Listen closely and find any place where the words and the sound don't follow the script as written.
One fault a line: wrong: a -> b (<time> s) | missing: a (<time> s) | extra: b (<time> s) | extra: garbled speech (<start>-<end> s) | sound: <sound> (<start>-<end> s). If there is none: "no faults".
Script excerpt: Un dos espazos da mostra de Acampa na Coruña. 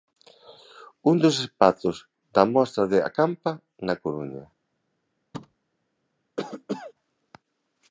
sound: thud (5.3-5.6 s)
sound: cough (6.4-6.9 s)